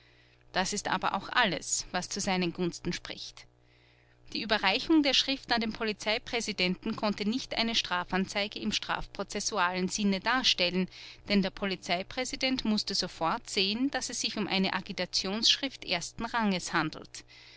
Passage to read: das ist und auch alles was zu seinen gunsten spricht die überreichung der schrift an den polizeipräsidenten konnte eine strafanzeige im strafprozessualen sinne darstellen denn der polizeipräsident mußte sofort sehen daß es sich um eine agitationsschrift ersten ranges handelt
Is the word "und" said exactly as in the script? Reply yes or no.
no